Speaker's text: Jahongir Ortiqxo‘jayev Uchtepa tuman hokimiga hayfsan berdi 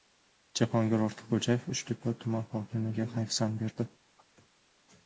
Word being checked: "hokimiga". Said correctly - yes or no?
yes